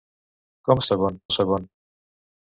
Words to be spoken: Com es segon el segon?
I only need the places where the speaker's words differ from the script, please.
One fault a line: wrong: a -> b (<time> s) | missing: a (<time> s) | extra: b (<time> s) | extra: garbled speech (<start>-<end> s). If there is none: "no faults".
no faults